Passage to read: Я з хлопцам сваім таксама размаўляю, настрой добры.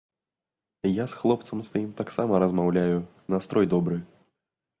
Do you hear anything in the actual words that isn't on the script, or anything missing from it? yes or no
no